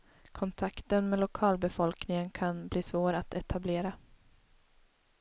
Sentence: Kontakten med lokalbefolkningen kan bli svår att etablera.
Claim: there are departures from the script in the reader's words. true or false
false